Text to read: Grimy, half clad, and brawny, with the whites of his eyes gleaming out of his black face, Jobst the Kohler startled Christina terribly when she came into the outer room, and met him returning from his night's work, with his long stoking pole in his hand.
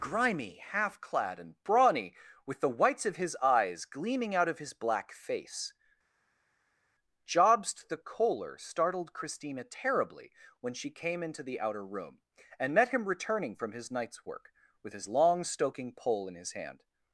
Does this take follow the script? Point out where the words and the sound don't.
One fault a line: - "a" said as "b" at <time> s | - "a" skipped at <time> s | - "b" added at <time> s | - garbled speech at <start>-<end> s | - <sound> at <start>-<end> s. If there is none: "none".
none